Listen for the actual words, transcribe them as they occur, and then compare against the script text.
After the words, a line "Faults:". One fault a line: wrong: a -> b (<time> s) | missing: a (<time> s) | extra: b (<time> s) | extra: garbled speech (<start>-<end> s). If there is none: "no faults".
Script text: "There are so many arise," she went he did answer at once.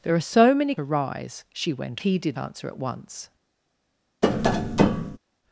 "There are so many arise," she went he did answer at once.
Faults:
no faults